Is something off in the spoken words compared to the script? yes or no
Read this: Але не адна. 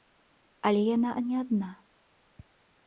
yes